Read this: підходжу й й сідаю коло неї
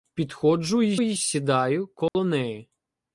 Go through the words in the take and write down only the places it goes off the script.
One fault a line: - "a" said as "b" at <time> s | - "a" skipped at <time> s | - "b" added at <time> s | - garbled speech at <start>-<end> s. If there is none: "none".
none